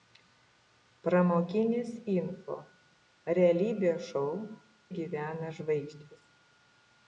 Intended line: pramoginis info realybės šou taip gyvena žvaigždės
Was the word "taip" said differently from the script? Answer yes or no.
yes